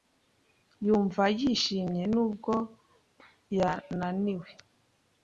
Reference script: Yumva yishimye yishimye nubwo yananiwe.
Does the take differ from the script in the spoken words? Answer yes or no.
yes